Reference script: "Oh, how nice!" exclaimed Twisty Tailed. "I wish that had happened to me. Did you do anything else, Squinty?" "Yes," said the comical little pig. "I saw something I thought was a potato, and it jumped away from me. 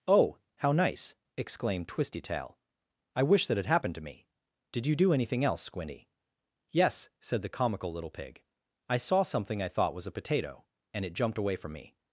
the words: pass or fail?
fail